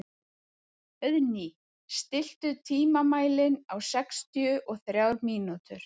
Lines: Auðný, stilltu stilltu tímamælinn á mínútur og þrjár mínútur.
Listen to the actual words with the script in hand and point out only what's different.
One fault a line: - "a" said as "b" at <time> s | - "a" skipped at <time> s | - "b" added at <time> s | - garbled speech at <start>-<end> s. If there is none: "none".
- "stilltu" skipped at 2.5 s
- "mínútur" said as "sextíu" at 3.9 s